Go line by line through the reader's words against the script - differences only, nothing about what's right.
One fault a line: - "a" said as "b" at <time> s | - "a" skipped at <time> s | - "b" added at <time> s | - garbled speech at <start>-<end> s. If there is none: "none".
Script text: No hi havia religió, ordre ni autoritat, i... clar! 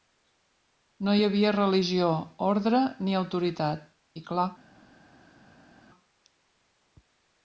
none